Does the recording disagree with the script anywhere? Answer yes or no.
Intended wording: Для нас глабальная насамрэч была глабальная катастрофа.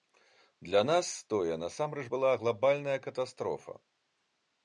yes